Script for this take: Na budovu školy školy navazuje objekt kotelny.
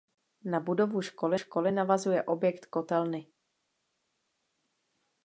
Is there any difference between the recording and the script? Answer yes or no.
no